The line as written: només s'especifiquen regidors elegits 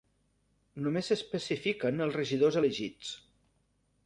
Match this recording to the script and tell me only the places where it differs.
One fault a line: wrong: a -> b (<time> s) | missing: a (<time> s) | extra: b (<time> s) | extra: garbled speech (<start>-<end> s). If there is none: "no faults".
extra: els (2.1 s)